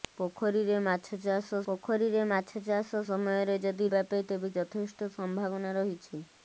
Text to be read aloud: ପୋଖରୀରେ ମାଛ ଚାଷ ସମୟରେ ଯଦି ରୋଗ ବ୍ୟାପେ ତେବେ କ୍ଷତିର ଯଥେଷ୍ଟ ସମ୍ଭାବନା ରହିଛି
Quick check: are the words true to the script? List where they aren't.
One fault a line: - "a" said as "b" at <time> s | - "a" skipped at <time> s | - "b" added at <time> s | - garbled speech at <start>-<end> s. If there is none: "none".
- "ପୋଖରୀରେ ମାଛ ଚାଷ" added at 1.7 s
- "ରୋଗ" skipped at 3.9 s
- "କ୍ଷତିର" skipped at 4.5 s